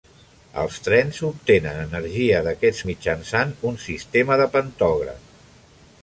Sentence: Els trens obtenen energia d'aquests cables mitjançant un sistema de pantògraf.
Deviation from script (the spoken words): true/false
true